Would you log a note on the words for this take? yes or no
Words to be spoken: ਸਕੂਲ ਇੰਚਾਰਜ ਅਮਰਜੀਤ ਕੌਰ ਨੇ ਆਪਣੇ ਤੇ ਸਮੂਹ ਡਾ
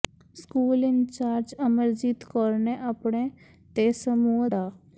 no